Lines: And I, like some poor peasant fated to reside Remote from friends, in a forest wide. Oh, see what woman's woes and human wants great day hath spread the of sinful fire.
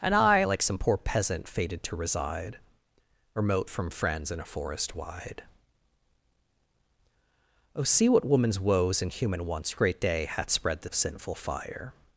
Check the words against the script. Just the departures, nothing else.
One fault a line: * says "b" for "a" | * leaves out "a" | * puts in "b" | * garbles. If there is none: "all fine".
all fine